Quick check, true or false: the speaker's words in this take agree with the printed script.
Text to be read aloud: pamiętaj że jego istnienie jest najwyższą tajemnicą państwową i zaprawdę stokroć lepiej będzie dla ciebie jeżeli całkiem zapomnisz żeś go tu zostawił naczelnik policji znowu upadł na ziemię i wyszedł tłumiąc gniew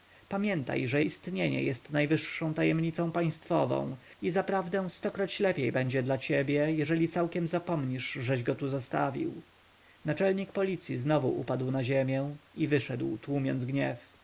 false